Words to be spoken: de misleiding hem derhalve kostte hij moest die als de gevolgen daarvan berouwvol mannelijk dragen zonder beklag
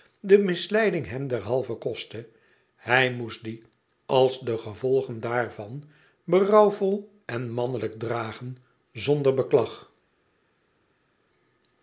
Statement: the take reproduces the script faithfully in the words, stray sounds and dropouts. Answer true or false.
false